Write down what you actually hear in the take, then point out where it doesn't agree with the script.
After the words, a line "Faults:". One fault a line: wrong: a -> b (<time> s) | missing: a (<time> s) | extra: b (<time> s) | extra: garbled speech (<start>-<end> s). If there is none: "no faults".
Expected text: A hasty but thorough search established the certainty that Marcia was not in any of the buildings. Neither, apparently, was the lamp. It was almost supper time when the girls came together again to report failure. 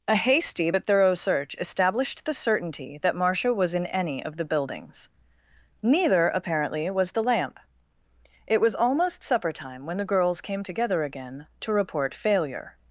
A hasty but thorough search established the certainty that Marcia was in any of the buildings. Neither, apparently, was the lamp. It was almost supper time when the girls came together again to report failure.
Faults:
missing: not (3.7 s)